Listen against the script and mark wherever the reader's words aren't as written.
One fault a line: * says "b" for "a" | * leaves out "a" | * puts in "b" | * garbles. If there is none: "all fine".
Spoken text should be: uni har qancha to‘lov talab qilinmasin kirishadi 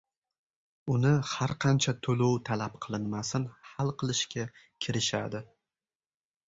* puts in "hal qilishga"